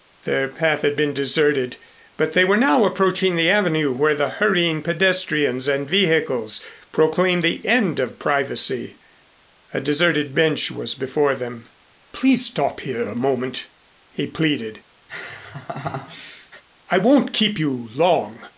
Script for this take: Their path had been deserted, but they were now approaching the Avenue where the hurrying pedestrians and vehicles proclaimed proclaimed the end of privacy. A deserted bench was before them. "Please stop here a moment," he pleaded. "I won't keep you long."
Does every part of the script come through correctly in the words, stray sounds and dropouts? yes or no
no